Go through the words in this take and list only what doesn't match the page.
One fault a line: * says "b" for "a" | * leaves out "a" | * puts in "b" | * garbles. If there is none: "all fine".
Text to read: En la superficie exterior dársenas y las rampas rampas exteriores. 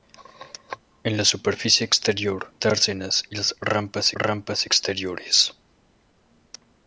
all fine